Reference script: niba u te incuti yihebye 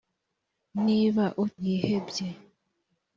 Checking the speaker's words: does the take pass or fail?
fail